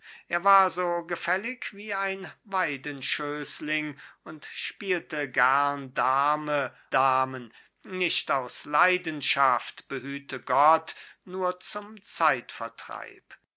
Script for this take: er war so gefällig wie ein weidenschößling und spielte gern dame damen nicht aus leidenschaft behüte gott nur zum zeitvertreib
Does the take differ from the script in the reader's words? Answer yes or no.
no